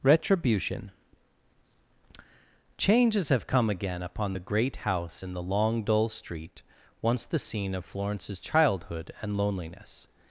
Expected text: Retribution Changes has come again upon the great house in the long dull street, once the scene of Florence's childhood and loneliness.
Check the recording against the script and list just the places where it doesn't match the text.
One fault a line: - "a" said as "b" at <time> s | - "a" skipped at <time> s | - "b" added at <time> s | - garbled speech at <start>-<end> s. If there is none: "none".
- "has" said as "have" at 3.3 s